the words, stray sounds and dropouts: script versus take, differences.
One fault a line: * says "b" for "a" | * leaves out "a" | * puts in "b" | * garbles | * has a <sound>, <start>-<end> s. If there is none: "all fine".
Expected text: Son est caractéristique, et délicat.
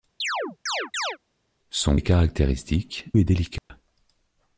* has a chirp, 0.2-1.2 s
* has a dropout, 3.6-3.7 s